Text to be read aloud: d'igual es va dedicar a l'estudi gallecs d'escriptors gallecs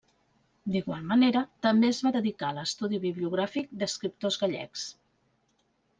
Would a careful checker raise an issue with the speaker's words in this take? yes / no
yes